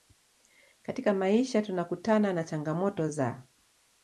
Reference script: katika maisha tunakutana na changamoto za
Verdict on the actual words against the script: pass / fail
pass